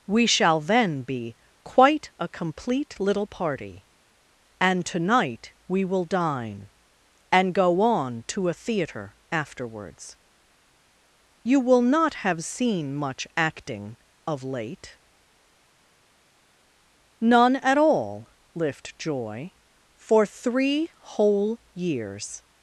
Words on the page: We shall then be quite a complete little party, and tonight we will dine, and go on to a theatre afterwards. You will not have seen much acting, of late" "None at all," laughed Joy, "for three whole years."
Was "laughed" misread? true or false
true